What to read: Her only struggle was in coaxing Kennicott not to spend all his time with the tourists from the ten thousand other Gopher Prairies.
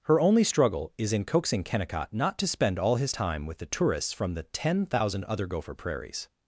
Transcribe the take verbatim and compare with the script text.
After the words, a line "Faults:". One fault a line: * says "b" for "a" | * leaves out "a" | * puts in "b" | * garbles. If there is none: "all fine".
Her only struggle is in coaxing Kennicott not to spend all his time with the tourists from the ten thousand other Gopher Prairies.
Faults:
* says "is" for "was"